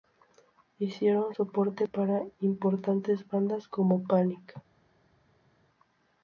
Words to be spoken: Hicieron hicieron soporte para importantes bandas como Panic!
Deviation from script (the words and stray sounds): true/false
true